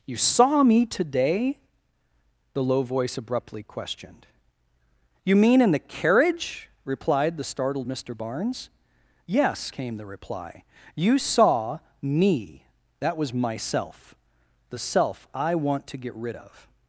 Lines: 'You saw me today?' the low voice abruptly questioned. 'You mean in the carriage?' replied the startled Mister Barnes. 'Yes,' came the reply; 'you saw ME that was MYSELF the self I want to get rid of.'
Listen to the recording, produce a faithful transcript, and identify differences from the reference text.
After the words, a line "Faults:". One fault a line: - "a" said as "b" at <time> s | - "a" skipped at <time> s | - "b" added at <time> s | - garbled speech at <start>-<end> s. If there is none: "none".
'You saw me today?' the low voice abruptly questioned. 'You mean in the carriage?' replied the startled Mister Barnes. 'Yes,' came the reply; 'you saw ME that was MYSELF the self I want to get rid of.'
Faults:
none